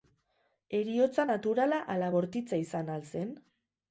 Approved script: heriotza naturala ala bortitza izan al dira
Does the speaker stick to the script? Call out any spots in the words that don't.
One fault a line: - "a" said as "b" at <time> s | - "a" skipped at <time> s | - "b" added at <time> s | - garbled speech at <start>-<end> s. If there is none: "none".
- "dira" said as "zen" at 3.1 s